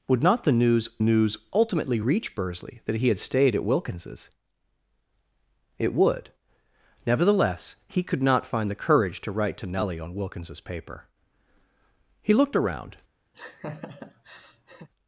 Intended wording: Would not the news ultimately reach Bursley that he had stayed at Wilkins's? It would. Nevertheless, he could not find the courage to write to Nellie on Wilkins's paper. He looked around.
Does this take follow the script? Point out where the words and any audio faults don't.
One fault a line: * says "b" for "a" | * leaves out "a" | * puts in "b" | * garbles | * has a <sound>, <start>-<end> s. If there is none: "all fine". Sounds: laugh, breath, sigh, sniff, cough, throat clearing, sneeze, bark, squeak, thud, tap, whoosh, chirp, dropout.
* puts in "news"
* has a laugh, 13.3-14.9 s